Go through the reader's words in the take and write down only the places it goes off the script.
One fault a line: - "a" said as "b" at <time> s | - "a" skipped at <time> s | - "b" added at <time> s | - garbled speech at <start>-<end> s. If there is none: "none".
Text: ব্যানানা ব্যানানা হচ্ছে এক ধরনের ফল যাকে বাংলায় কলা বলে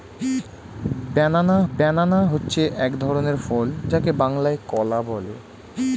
none